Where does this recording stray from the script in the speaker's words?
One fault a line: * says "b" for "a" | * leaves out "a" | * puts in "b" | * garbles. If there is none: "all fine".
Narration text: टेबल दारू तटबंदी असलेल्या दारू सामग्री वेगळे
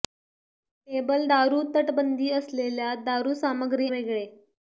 all fine